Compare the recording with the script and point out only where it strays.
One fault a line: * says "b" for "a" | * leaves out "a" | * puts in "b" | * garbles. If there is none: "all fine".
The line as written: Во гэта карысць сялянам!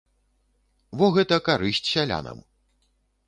all fine